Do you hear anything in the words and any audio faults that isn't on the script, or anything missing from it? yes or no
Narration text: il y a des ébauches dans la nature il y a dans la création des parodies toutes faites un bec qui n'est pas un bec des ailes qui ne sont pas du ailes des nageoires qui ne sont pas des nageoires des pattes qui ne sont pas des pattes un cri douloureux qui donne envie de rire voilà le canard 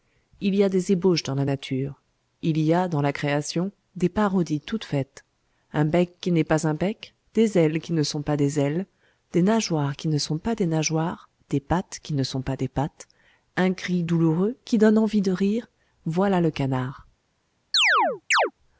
yes